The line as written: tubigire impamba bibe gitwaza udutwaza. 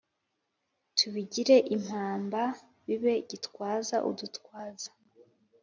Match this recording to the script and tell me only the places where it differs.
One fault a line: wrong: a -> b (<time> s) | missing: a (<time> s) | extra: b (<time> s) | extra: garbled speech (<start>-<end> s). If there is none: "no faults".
no faults